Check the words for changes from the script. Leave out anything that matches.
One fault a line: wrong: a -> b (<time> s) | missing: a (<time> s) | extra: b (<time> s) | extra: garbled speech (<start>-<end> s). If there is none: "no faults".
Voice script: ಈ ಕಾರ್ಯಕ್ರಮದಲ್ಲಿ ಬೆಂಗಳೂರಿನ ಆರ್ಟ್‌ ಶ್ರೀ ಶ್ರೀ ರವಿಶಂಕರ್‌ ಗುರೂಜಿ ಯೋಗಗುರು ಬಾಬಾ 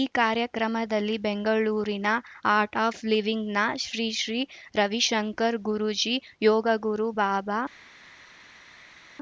extra: ಆಫ್ ಲಿವಿಂಗ್‌ನ (2.8 s)